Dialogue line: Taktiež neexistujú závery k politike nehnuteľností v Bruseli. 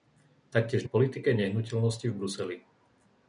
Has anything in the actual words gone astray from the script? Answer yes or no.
yes